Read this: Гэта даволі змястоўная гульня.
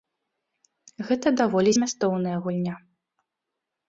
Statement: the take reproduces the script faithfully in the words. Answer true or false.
true